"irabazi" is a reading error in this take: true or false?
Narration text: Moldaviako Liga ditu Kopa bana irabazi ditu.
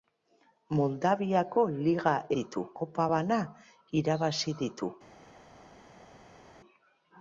false